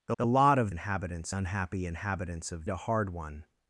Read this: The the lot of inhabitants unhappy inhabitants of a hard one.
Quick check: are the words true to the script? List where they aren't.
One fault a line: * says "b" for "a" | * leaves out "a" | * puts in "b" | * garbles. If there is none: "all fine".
all fine